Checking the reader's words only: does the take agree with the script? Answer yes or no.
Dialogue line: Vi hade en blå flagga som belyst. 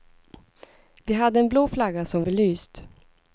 yes